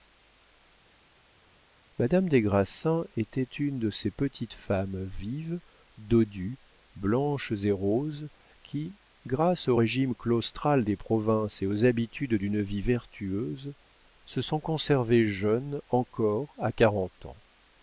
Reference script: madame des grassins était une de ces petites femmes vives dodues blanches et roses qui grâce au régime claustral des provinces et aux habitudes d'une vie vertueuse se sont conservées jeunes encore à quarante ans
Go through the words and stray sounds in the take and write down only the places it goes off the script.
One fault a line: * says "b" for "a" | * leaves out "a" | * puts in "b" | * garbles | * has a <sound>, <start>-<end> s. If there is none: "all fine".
all fine